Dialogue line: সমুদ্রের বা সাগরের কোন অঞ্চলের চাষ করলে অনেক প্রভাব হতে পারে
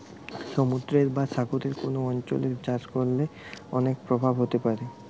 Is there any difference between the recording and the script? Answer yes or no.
no